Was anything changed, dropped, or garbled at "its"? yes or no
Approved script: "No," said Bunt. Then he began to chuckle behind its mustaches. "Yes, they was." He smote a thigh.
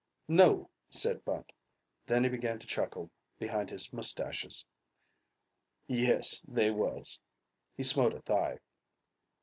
yes